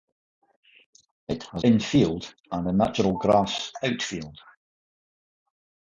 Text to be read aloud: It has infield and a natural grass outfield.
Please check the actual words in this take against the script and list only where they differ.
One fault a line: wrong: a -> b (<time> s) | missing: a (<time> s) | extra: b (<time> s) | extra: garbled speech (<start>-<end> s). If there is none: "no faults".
no faults